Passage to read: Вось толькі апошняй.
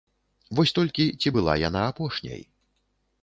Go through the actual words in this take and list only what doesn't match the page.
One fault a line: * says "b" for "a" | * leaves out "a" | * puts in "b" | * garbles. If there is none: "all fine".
* puts in "ці была яна"